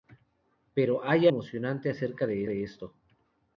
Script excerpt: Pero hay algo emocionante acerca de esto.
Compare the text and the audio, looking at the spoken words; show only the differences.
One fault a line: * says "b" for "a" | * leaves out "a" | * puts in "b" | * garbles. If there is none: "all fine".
* leaves out "algo"
* puts in "de"